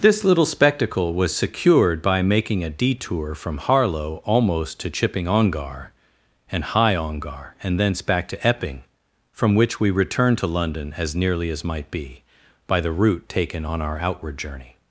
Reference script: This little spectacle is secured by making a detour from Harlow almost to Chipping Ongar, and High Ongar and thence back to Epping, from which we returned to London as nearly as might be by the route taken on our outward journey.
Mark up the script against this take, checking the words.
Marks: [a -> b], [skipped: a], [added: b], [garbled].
This little spectacle [is -> was] secured by making a detour from Harlow almost to Chipping Ongar, and High Ongar and thence back to Epping, from which we returned to London as nearly as might be by the route taken on our outward journey.